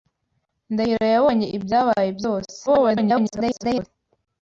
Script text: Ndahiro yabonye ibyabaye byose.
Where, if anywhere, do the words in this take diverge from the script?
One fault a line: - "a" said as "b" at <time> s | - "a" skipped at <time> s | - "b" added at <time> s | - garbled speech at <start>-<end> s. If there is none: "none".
- garbled speech at 2.7-3.9 s